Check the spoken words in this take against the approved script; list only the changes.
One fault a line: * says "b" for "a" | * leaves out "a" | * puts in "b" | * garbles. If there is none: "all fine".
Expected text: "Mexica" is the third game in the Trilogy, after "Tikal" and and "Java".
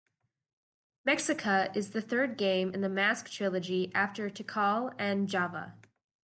* puts in "Mask"
* leaves out "and"